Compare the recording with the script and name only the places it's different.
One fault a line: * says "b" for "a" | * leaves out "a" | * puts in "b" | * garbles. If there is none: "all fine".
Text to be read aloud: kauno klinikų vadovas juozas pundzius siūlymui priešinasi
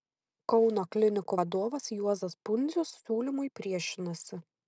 all fine